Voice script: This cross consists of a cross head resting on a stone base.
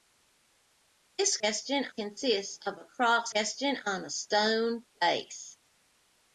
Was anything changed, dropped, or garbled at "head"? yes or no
yes